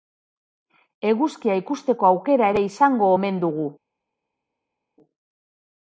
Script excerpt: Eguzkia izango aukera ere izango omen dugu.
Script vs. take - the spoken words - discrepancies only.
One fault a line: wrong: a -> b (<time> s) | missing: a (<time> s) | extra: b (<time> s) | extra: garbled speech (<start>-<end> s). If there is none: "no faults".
wrong: izango -> ikusteko (1.6 s)